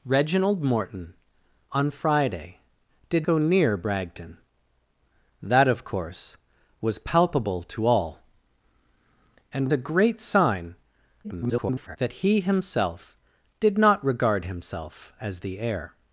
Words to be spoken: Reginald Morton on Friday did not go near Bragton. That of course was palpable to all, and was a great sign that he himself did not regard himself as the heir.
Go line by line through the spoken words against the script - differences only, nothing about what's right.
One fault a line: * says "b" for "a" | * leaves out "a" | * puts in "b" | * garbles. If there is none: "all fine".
* leaves out "not"
* leaves out "was"
* garbles